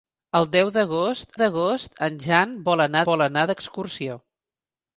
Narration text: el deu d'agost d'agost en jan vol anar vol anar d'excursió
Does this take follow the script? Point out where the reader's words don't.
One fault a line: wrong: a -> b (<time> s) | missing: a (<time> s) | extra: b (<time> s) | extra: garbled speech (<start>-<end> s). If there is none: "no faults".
no faults